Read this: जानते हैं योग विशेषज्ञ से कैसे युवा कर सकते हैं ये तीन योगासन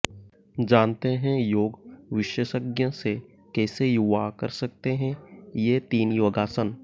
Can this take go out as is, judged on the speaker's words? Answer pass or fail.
pass